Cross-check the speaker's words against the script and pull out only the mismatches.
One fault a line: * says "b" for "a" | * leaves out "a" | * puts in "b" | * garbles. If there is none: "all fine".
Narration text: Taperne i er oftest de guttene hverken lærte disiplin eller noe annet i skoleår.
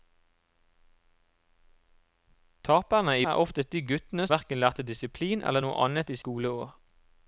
all fine